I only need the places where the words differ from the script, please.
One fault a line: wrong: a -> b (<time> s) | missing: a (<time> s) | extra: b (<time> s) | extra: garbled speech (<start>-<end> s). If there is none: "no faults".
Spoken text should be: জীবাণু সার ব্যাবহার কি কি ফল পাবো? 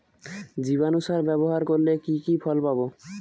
extra: করলে (1.7 s)